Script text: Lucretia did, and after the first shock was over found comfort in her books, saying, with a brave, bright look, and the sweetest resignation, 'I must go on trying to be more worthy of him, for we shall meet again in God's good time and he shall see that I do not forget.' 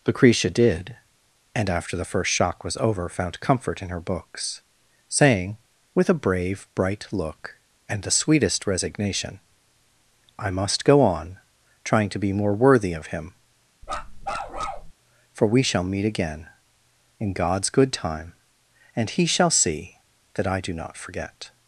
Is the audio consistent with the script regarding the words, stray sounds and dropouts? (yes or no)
no